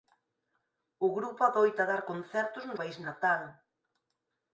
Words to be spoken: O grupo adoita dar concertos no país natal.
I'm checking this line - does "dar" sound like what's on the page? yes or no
yes